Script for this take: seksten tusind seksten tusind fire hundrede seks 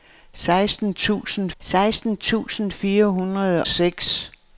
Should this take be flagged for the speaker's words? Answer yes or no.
no